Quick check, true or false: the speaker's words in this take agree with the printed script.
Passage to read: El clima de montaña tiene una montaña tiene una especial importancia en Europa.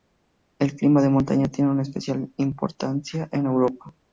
false